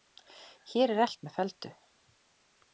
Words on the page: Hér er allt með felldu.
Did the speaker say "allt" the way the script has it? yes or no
yes